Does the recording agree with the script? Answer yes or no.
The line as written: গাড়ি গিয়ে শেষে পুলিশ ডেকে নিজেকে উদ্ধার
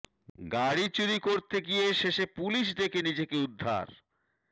no